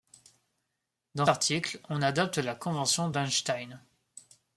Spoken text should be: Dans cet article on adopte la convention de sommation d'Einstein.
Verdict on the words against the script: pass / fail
fail